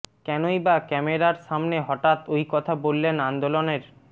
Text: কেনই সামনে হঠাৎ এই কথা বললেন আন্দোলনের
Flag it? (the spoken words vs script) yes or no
yes